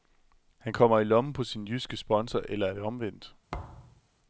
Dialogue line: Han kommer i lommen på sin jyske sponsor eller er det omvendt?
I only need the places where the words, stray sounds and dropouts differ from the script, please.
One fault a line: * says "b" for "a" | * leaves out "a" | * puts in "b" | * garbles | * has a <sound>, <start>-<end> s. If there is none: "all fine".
* has a thud, 3.5-4.0 s